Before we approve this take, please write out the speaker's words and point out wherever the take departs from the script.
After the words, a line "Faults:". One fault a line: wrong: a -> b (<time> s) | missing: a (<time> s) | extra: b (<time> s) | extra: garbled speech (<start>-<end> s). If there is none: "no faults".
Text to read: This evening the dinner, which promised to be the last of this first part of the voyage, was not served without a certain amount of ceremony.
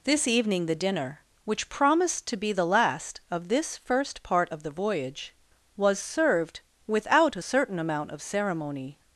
This evening the dinner, which promised to be the last of this first part of the voyage, was served without a certain amount of ceremony.
Faults:
missing: not (6.0 s)